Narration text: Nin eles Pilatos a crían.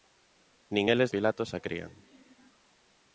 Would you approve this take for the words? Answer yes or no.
yes